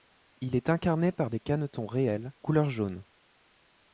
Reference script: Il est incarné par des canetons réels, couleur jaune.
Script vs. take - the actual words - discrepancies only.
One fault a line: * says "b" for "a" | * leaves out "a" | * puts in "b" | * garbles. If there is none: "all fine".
all fine